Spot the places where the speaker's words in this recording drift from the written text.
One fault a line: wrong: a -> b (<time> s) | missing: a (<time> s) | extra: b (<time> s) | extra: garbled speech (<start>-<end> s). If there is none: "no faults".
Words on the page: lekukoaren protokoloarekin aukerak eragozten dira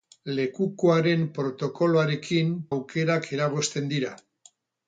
no faults